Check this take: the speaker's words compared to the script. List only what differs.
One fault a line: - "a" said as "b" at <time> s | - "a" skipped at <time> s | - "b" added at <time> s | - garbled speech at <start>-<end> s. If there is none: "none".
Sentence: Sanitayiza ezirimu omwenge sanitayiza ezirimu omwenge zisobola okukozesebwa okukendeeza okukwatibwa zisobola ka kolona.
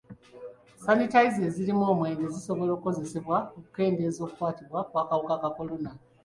- "sanitayiza ezirimu omwenge" skipped at 2.2 s
- "zisobola" said as "kw'akawuka" at 4.9 s